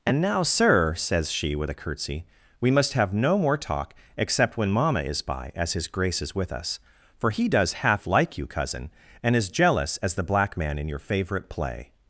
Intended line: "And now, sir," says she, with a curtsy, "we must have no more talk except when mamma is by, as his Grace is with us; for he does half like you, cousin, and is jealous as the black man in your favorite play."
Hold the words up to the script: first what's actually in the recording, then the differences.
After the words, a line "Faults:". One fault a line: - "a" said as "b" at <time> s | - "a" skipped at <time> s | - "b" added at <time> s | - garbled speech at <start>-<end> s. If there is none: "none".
"And now, sir," says she, with a curtsy, "we must have no more talk except when mamma is by, as his Grace is with us; for he does half like you, cousin, and is jealous as the black man in your favorite play."
Faults:
none